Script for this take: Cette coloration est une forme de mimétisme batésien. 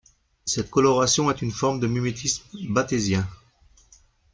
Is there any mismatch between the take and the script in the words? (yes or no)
no